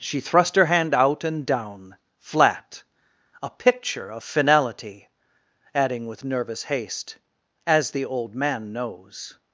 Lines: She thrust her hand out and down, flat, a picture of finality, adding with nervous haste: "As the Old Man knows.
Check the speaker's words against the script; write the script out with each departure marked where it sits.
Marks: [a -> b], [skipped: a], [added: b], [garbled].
She thrust her hand out and down, flat, a picture of finality, adding with nervous haste: "As the Old Man knows.